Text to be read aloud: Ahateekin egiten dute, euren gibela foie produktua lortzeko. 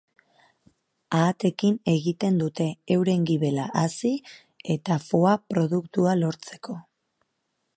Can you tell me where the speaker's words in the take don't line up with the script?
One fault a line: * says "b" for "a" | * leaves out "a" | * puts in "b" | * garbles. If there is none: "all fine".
* puts in "hazi eta"